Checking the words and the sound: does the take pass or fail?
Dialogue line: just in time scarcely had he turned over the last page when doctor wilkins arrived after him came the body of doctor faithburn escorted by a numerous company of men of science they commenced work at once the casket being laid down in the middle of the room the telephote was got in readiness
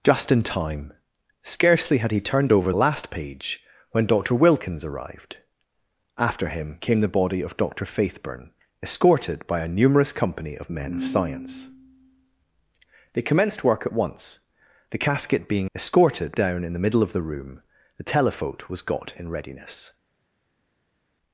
fail